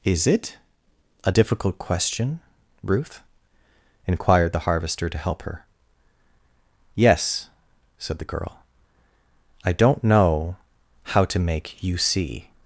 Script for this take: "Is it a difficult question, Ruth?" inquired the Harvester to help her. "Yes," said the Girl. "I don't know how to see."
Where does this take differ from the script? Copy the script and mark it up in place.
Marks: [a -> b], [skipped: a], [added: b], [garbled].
"Is it a difficult question, Ruth?" inquired the Harvester to help her. "Yes," said the Girl. "I don't know how to [added: make you] see."